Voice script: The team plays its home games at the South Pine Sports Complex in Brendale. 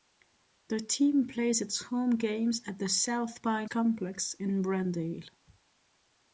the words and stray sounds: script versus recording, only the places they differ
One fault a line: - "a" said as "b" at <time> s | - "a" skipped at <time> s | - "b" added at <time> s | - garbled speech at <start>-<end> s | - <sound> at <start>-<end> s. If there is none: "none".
- "Sports" skipped at 3.7 s